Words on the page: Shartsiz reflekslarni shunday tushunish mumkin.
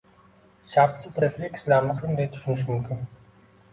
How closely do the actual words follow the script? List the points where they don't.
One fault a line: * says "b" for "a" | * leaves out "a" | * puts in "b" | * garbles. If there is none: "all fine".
all fine